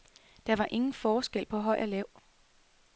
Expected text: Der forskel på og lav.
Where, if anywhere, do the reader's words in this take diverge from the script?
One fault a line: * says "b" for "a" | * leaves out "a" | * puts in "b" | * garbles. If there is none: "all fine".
* puts in "var ingen"
* puts in "høj"